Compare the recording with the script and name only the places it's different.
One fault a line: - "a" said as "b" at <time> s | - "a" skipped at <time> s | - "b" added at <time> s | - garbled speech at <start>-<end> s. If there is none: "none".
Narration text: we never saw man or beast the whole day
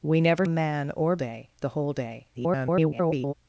- "saw" skipped at 0.5 s
- "beast" said as "day" at 1.2 s
- garbled speech at 2.3-3.3 s